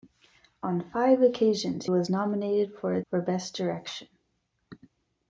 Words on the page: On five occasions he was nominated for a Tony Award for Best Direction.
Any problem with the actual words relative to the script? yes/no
yes